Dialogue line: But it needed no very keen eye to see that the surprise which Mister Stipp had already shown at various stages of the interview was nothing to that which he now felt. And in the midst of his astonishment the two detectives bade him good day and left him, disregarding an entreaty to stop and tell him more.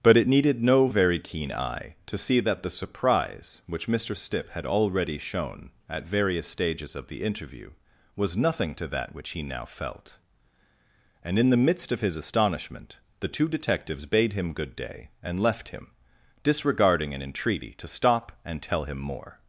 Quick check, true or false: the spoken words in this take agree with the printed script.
true